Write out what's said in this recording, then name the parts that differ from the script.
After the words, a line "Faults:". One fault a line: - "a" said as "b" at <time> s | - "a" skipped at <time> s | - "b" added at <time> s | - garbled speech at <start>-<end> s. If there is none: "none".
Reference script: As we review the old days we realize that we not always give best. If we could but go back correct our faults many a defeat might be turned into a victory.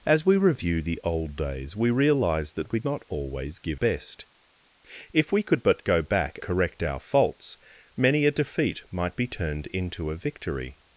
As we review the old days we realize that we not always give best. If we could but go back correct our faults many a defeat might be turned into a victory.
Faults:
none